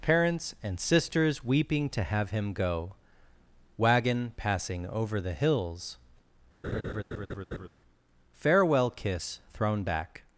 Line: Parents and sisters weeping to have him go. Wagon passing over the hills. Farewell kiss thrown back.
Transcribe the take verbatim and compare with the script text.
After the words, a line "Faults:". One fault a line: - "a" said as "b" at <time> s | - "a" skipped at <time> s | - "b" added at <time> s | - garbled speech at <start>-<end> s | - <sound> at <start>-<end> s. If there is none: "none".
Parents and sisters weeping to have him go. Wagon passing over the hills. Farewell kiss thrown back.
Faults:
- laugh at 6.6-7.7 s